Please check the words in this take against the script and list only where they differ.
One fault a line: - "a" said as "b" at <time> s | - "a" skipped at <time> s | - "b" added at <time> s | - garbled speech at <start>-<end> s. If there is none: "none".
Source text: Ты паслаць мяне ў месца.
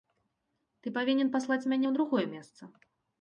- "павінен" added at 0.9 s
- "другое" added at 2.0 s